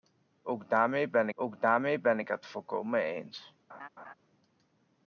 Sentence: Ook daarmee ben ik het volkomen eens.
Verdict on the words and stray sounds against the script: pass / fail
fail